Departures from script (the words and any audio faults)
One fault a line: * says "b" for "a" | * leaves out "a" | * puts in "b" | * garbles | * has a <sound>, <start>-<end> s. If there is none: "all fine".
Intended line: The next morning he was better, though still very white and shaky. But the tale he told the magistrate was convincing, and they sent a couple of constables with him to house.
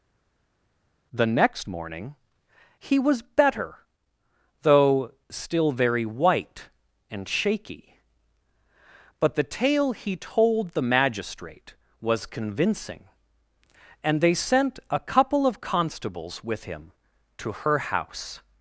* puts in "her"